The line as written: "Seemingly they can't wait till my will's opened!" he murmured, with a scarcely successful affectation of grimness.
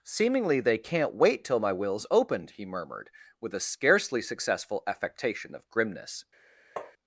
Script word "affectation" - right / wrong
right